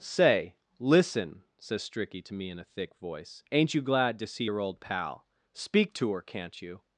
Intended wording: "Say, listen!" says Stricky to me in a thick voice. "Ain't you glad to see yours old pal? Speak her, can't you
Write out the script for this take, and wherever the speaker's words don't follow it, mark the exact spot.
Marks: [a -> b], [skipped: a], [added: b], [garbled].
"Say, listen!" says Stricky to me in a thick voice. "Ain't you glad to see [yours -> your] old pal? Speak [added: to] her, can't you